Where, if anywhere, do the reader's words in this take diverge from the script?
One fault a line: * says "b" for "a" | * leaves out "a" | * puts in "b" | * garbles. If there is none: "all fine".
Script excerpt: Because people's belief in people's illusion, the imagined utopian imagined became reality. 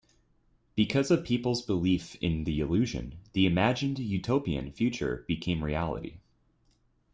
* puts in "of"
* says "the" for "people's"
* says "future" for "imagined"